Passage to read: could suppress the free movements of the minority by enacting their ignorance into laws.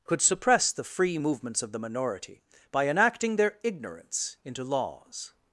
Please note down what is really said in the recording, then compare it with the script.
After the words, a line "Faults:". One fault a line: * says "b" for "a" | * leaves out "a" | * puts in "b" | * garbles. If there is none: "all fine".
could suppress the free movements of the minority by enacting their ignorance into laws.
Faults:
all fine